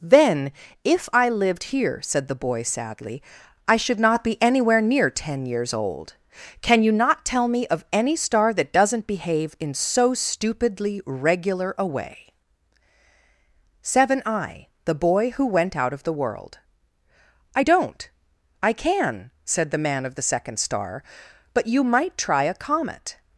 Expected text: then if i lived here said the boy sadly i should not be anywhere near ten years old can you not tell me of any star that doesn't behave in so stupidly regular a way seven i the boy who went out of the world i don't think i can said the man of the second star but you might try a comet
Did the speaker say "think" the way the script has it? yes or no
no